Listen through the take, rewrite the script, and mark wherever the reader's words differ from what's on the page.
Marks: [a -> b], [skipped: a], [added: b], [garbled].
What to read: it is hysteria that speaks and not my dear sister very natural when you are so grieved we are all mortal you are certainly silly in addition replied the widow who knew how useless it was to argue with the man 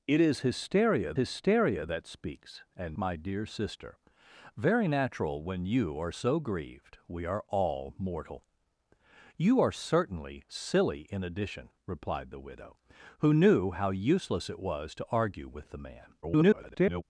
it is hysteria [added: hysteria] that speaks and [skipped: not] my dear sister very natural when you are so grieved we are all mortal you are certainly silly in addition replied the widow who knew how useless it was to argue with the man [garbled]